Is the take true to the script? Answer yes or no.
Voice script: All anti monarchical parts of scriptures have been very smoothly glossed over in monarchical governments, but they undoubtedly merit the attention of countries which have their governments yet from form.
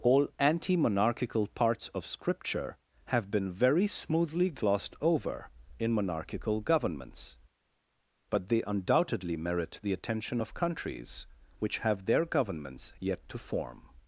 no